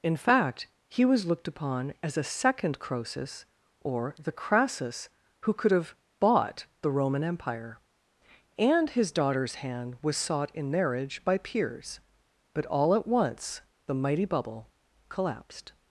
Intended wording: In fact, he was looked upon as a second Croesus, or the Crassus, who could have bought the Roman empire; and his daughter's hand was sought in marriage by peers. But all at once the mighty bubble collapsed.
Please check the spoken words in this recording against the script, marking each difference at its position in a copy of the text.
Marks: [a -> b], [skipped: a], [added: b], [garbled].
In fact, he was looked upon as a second Croesus, or the Crassus, who could have bought the Roman empire; and his daughter's hand was sought in marriage by peers. But all at once the mighty bubble collapsed.